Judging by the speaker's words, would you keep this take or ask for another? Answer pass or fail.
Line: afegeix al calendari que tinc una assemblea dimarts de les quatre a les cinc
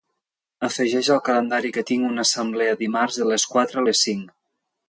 pass